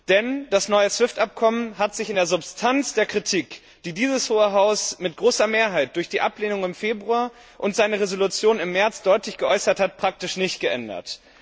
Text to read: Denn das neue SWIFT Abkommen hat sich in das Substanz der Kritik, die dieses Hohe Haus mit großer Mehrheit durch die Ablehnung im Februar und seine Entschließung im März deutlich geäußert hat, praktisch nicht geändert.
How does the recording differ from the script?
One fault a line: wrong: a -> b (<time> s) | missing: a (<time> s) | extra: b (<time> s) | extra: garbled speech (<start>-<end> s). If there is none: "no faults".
wrong: das -> der (2.2 s)